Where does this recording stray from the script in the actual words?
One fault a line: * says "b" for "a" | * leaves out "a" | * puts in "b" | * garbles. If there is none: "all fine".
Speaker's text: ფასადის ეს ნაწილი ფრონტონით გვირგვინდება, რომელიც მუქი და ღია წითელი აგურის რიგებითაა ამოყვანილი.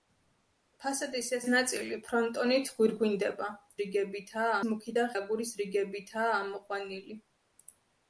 * says "რიგებითაა" for "რომელიც"
* leaves out "ღია წითელი"